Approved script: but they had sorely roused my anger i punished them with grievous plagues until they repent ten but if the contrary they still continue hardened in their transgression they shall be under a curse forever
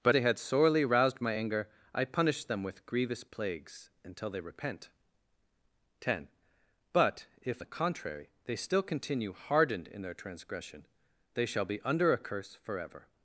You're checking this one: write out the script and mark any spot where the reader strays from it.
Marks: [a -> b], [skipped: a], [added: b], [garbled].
but they had sorely roused my anger i punished them with grievous plagues until they repent ten but if the contrary they still continue hardened in their transgression they shall be under a curse forever